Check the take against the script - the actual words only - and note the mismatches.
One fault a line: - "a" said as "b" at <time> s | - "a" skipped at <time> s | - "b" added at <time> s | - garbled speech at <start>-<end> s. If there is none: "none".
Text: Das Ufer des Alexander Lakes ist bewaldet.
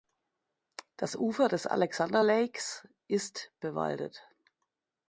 none